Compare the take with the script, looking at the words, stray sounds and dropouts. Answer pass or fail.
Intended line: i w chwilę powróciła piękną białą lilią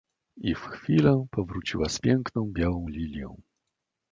fail